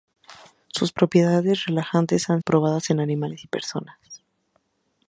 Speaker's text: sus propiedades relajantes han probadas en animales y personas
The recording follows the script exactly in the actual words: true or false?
true